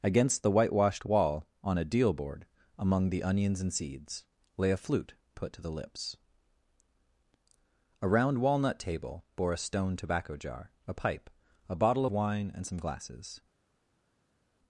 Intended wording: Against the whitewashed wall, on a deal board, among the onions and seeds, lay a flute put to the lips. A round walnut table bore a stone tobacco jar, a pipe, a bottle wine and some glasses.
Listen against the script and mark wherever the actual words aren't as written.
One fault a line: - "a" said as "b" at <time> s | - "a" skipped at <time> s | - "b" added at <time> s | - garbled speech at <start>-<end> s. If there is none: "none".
none